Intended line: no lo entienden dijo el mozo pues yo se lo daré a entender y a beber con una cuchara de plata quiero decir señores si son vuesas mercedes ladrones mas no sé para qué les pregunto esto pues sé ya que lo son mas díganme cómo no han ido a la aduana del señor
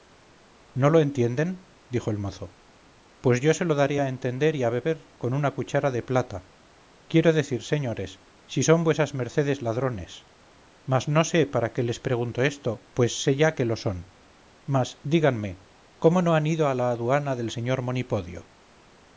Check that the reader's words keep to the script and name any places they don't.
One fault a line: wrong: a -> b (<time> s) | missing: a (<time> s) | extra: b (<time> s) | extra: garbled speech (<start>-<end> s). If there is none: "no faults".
no faults